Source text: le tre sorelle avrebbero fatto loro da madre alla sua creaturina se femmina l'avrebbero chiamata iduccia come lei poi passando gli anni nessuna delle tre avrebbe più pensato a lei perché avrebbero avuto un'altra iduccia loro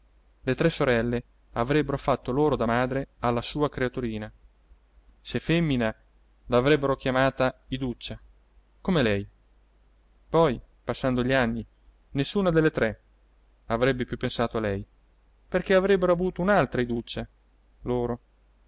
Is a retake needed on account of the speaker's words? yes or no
no